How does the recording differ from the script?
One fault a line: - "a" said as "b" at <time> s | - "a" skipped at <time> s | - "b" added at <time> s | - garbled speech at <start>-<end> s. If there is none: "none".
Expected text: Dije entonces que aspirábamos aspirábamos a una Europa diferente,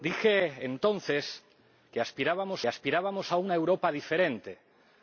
none